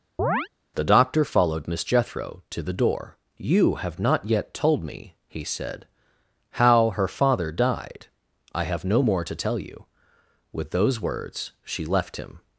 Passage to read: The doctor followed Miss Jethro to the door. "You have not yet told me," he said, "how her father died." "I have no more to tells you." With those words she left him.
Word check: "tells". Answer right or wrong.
wrong